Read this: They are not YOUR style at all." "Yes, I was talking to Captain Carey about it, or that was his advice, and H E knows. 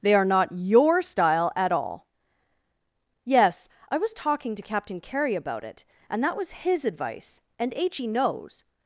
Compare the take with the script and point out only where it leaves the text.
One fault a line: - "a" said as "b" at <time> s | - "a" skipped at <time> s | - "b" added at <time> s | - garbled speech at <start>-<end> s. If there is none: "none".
- "or" said as "and" at 6.1 s